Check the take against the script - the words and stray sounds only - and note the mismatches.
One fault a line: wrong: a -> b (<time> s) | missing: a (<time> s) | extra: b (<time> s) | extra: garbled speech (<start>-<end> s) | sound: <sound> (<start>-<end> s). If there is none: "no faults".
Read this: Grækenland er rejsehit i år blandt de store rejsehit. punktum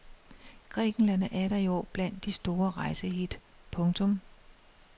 wrong: rejsehit -> atter (1.3 s)